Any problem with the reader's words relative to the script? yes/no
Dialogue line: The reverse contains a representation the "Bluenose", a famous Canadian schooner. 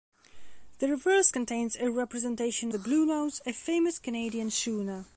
no